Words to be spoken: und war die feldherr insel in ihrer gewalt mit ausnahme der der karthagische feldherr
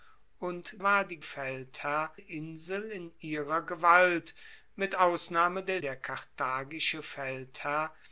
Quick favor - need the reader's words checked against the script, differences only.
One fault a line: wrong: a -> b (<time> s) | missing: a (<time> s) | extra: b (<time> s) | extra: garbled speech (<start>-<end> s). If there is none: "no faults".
no faults